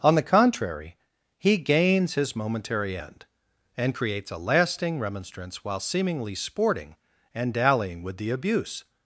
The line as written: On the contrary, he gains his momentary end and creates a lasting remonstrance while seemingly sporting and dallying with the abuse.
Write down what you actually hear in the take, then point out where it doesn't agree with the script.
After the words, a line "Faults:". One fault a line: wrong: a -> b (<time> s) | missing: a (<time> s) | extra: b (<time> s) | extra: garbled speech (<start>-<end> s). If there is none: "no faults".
On the contrary, he gains his momentary end and creates a lasting remonstrance while seemingly sporting and dallying with the abuse.
Faults:
no faults